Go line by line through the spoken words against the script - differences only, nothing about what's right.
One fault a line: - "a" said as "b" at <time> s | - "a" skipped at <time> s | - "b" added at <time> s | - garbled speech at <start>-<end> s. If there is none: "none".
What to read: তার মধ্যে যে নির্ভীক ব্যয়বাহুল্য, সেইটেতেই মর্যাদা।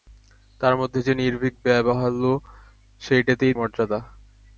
none